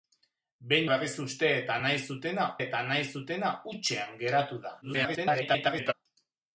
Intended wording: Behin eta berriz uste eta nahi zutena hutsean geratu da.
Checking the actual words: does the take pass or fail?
fail